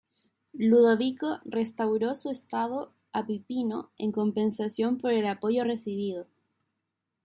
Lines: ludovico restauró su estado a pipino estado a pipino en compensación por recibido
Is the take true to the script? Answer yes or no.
no